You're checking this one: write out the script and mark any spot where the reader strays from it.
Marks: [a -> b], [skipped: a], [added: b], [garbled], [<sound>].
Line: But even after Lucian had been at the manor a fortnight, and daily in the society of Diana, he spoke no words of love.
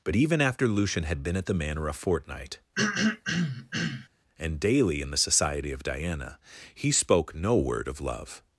But even after Lucian had been at the manor a fortnight, [throat clearing] and daily in the society of Diana, he spoke no [words -> word] of love.